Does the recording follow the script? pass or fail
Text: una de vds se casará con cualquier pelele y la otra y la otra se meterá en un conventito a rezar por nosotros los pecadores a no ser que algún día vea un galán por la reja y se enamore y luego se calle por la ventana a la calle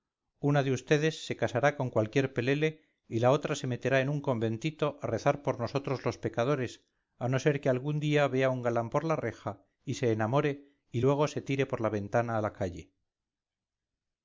fail